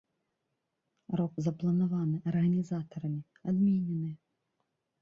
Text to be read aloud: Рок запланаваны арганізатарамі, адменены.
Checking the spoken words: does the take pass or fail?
pass